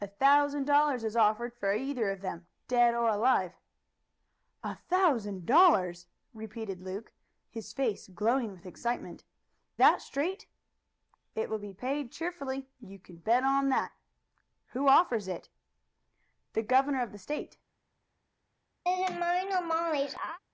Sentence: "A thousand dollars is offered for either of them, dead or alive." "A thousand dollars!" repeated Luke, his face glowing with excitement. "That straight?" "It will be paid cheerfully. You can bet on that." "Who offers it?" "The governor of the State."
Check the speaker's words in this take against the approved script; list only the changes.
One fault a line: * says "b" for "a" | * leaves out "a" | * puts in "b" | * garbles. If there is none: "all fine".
all fine